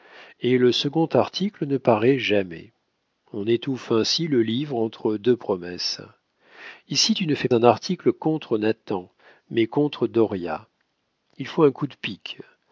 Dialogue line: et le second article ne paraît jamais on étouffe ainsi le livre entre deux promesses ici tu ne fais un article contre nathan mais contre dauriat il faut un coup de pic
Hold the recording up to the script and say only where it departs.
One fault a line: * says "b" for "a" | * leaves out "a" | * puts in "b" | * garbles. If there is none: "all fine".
all fine